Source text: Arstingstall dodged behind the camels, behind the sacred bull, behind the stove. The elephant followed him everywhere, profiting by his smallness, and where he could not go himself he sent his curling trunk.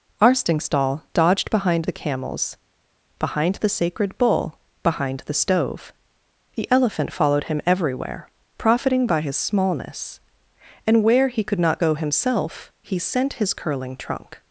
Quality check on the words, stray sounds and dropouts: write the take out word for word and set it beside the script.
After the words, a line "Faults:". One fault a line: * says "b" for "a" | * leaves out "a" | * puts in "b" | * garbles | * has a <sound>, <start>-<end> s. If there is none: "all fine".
Arstingstall dodged behind the camels, behind the sacred bull, behind the stove. The elephant followed him everywhere, profiting by his smallness, and where he could not go himself he sent his curling trunk.
Faults:
all fine